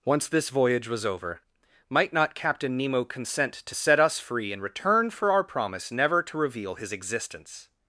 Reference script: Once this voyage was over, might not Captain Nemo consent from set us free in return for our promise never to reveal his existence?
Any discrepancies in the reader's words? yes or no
yes